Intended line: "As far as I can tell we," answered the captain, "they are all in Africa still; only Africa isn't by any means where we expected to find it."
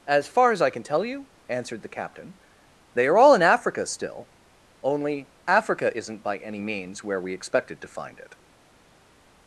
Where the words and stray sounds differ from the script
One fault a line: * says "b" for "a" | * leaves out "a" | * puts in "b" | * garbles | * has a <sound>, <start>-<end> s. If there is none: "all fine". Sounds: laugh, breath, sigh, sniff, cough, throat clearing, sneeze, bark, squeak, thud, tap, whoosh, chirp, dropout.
* says "you" for "we"